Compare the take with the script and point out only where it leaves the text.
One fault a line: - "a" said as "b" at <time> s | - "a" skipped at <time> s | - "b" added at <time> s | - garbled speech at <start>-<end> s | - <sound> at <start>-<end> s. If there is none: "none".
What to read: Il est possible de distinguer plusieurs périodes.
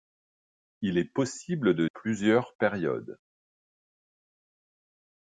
- "distinguer" skipped at 1.9 s